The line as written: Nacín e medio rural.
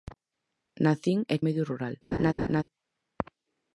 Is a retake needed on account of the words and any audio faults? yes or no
yes